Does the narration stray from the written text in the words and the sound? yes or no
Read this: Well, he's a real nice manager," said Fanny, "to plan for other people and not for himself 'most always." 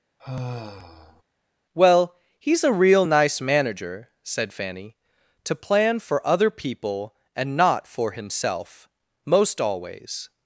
yes